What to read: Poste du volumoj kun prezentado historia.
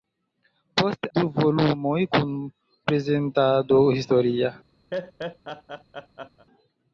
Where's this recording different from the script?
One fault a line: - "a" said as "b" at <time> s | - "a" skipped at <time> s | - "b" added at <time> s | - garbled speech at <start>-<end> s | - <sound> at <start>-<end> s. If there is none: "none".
- laugh at 4.9-6.5 s